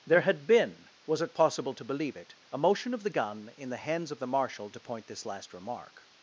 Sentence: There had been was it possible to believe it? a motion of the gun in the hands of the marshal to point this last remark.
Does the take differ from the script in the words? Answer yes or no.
no